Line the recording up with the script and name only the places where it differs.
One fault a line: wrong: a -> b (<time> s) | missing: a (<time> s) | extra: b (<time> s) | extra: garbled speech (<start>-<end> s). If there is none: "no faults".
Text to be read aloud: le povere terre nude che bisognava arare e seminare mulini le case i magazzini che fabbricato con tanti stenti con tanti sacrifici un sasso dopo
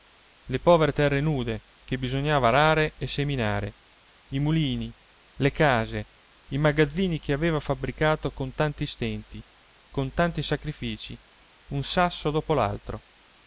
extra: i (4.3 s)
extra: aveva (7.3 s)